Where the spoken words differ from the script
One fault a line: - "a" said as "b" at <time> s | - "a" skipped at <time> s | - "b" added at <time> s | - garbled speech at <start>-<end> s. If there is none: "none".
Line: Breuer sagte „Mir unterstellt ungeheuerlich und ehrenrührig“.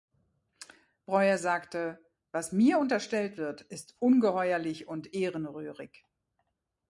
- "Was" added at 2.3 s
- "wird ist" added at 3.4 s